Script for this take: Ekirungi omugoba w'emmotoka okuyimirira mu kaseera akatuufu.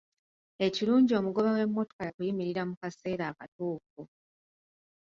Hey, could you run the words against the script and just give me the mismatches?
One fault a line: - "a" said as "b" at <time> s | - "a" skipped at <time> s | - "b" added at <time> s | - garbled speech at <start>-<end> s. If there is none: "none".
none